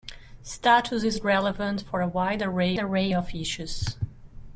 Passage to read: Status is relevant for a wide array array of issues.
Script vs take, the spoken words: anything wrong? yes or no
no